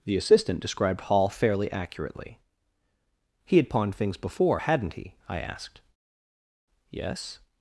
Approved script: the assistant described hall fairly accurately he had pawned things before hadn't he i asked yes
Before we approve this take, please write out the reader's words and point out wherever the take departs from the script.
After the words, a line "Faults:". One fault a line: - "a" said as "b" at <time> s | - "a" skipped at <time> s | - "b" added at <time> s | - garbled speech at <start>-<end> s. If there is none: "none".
the assistant described hall fairly accurately he had pawned things before hadn't he i asked yes
Faults:
none